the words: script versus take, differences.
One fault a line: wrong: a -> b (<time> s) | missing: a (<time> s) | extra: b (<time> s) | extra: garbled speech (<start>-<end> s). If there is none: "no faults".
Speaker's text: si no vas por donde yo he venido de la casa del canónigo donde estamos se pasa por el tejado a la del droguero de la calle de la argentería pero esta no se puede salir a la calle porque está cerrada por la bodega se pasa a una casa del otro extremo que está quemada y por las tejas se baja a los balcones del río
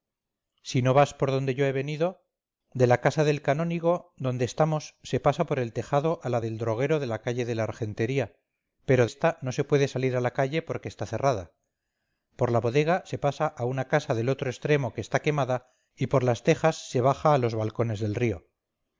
no faults